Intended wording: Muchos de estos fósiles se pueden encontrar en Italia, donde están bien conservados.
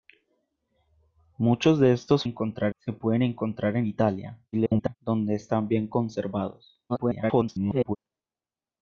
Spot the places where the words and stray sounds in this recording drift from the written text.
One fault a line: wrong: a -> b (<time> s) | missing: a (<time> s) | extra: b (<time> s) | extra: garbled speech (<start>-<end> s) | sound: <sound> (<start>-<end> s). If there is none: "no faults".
wrong: fósiles -> encontrar (2.2 s)
extra: garbled speech (4.5-5.0 s)
extra: garbled speech (6.9-8.0 s)